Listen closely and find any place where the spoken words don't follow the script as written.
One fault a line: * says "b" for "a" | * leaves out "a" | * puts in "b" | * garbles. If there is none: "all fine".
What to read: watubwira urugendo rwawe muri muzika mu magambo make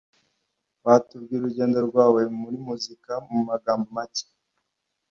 all fine